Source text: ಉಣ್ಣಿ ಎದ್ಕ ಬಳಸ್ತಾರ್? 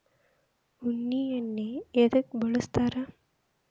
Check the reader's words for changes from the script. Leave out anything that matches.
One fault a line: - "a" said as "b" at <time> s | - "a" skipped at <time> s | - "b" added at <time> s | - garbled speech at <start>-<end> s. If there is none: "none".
- "ಎಣ್ಣಿ" added at 1.3 s